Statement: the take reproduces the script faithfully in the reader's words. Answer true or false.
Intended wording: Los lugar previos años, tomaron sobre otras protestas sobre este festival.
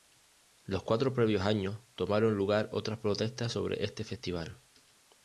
false